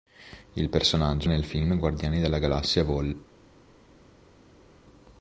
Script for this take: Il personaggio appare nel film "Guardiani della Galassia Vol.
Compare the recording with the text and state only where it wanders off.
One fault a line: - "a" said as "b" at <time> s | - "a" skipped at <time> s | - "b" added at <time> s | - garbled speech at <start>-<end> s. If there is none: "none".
- "appare" skipped at 1.3 s